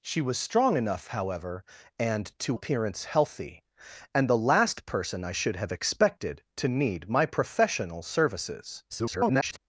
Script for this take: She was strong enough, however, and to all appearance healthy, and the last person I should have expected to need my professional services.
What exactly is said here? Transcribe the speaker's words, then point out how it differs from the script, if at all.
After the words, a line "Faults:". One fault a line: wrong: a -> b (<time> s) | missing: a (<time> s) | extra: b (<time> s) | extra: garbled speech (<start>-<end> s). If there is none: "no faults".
She was strong enough, however, and to appearance healthy, and the last person I should have expected to need my professional services. [garbled]
Faults:
missing: all (2.6 s)
extra: garbled speech (8.9-9.6 s)